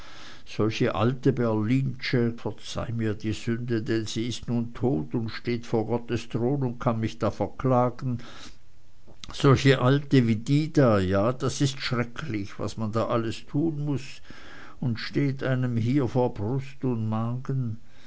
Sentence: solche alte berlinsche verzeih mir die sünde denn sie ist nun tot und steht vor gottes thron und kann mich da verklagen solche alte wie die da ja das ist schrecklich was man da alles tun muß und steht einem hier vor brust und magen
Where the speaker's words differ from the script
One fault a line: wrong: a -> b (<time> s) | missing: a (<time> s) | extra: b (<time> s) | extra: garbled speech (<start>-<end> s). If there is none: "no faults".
no faults